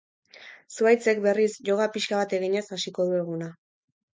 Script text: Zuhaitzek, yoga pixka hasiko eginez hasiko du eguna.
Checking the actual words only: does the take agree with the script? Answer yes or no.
no